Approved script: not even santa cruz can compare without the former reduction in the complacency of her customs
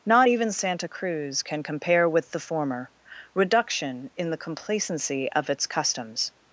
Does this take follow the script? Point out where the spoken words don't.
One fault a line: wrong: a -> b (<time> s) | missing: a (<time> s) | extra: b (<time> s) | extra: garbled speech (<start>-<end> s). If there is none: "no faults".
wrong: without -> with (2.1 s)
wrong: her -> its (5.5 s)